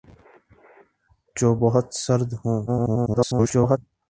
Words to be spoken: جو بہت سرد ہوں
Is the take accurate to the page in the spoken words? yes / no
no